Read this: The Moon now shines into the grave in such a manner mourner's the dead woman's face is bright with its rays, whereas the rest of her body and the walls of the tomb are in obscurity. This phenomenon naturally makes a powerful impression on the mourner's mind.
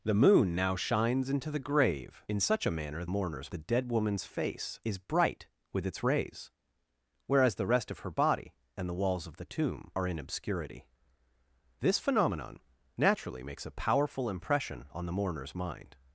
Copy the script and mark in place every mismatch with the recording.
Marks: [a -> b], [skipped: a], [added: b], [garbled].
The Moon now shines into the grave in such a manner mourner's the dead woman's face is bright with its rays, whereas the rest of her body and the walls of the tomb are in obscurity. This phenomenon naturally makes a powerful impression on the mourner's mind.